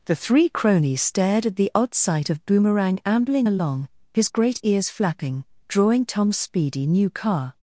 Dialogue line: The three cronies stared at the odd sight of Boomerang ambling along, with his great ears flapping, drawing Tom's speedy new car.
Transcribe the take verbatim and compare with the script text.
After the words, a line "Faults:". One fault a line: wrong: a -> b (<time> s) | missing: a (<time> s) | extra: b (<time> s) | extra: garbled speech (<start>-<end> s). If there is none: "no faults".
The three cronies stared at the odd sight of Boomerang ambling along, his great ears flapping, drawing Tom's speedy new car.
Faults:
missing: with (3.9 s)